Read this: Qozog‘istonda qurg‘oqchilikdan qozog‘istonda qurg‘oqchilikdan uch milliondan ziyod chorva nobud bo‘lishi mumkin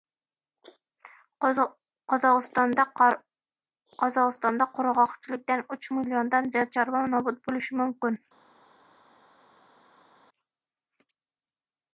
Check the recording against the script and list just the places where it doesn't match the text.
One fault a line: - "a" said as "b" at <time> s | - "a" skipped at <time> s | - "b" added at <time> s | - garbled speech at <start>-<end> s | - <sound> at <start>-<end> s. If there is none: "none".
- "qozog‘istonda qurg‘oqchilikdan" skipped at 5.7 s